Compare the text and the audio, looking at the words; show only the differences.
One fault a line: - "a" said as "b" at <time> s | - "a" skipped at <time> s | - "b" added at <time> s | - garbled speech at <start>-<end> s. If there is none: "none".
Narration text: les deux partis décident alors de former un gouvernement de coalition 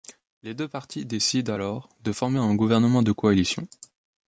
none